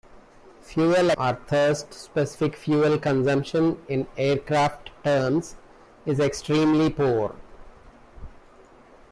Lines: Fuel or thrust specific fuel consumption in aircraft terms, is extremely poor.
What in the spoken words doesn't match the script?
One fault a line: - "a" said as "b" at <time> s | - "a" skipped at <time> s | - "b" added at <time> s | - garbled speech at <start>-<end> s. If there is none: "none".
none